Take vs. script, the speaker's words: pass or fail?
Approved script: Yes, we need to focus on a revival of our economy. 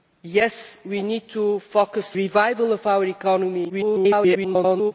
fail